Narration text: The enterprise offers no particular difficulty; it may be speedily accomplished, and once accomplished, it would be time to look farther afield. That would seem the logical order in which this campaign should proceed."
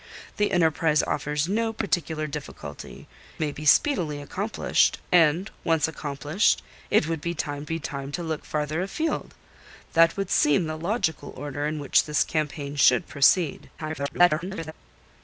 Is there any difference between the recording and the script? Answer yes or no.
yes